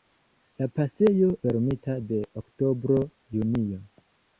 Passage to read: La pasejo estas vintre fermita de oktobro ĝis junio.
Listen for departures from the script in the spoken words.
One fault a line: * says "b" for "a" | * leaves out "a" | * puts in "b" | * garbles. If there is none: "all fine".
* leaves out "estas vintre"
* leaves out "ĝis"